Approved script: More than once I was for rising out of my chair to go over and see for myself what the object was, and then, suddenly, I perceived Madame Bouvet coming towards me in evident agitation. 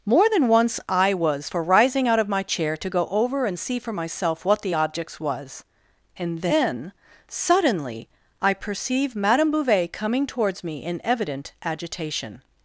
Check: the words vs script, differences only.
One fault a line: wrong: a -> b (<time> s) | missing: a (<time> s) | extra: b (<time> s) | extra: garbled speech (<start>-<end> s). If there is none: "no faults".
wrong: object -> objects (4.7 s)
wrong: perceived -> perceive (8.5 s)